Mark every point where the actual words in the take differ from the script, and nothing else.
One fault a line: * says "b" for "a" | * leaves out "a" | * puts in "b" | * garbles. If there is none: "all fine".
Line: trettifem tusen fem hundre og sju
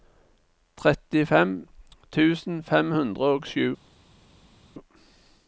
all fine